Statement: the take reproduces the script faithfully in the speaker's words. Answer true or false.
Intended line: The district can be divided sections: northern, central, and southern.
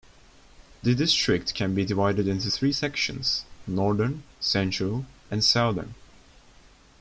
false